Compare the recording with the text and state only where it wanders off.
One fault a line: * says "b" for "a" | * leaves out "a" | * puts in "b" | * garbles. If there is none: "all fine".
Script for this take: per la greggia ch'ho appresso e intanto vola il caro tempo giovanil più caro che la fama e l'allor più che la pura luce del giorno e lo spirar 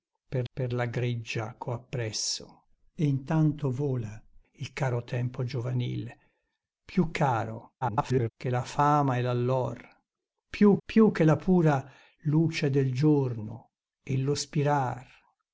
* puts in "per"
* garbles
* puts in "più"